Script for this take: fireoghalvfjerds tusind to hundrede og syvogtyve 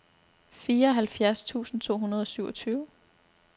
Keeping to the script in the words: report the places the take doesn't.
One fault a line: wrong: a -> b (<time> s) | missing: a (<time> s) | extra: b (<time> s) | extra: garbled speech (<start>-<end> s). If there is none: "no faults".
no faults